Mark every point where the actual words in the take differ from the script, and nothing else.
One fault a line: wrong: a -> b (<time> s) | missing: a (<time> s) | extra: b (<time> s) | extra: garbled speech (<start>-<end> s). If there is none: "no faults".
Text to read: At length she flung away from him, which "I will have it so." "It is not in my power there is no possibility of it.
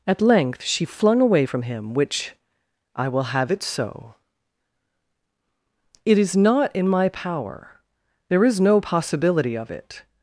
no faults